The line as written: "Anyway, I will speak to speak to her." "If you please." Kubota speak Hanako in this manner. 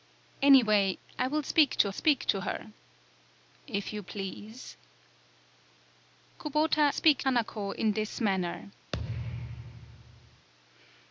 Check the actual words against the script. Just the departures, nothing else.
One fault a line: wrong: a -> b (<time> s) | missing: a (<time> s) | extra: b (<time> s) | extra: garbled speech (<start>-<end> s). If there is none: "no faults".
no faults